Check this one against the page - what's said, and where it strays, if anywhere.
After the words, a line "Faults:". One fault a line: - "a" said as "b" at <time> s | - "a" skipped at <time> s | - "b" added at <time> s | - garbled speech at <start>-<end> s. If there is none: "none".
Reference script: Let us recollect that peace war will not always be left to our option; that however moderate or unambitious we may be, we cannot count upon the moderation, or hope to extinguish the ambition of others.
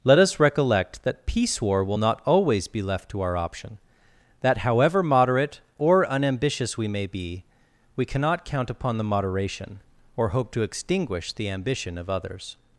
Let us recollect that peace war will not always be left to our option; that however moderate or unambitious we may be, we cannot count upon the moderation, or hope to extinguish the ambition of others.
Faults:
none